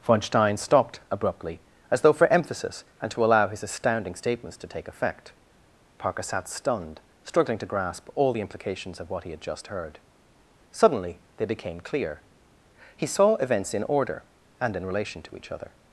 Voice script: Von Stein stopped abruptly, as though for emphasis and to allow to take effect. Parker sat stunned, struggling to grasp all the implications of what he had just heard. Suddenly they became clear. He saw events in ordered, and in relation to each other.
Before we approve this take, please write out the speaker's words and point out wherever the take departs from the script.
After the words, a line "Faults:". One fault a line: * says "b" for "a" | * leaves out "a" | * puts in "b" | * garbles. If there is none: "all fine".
Von Stein stopped abruptly, as though for emphasis and to allow his astounding statements to take effect. Parker sat stunned, struggling to grasp all the implications of what he had just heard. Suddenly they became clear. He saw events in order, and in relation to each other.
Faults:
* puts in "his astounding statements"
* says "order" for "ordered"